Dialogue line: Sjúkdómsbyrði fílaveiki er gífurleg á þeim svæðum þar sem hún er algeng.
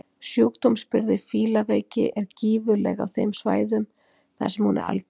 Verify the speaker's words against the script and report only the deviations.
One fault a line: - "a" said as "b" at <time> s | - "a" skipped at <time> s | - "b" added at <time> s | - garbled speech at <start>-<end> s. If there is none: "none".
none